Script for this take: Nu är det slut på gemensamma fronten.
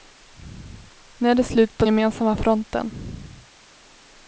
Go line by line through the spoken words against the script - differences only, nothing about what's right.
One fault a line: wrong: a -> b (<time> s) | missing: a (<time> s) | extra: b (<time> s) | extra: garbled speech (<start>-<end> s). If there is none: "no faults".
no faults